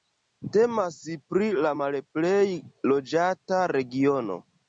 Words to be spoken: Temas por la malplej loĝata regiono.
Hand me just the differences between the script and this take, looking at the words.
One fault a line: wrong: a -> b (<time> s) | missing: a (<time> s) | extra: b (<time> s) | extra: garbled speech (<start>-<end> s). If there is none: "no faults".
wrong: por -> pri (1.3 s)